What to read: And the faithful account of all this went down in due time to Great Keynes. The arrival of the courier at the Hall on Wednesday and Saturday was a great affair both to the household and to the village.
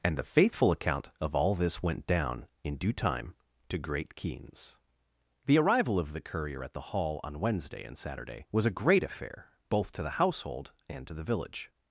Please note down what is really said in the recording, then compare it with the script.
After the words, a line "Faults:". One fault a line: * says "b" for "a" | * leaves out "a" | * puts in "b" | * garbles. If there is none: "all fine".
And the faithful account of all this went down in due time to Great Keynes. The arrival of the courier at the Hall on Wednesday and Saturday was a great affair both to the household and to the village.
Faults:
all fine